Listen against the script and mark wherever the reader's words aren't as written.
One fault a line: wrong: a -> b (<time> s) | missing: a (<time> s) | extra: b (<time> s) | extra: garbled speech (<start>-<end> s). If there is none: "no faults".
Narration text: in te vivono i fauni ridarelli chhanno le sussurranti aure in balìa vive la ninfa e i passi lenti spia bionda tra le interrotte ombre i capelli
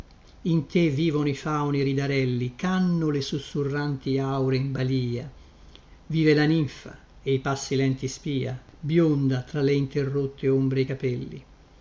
no faults